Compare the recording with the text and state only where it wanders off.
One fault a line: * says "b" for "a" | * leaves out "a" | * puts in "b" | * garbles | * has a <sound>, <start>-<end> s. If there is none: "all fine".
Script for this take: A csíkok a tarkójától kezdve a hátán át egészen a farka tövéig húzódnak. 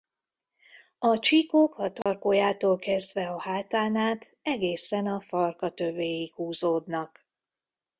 * has a dropout, 2.0-2.1 s